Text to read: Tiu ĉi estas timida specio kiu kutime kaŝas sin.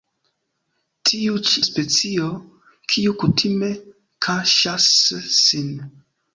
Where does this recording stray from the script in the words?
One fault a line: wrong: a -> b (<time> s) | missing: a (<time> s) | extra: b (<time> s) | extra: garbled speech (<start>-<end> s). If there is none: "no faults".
missing: estas timida (1.6 s)